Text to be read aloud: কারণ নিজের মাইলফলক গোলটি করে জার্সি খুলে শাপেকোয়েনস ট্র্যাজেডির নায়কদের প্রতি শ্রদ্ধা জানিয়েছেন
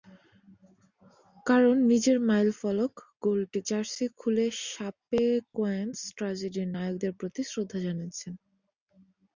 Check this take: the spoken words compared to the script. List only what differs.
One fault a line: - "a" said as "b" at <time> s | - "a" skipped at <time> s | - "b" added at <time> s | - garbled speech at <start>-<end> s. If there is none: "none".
- "করে" skipped at 3.6 s